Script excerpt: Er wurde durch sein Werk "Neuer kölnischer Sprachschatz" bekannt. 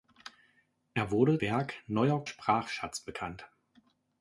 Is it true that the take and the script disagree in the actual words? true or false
true